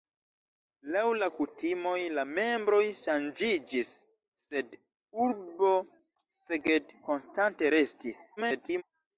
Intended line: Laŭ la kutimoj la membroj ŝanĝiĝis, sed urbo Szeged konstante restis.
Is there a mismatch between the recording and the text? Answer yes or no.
yes